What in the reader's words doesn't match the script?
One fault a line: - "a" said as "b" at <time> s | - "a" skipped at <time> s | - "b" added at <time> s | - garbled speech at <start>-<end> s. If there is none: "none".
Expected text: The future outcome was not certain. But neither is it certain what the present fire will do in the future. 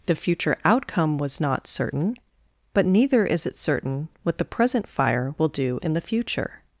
none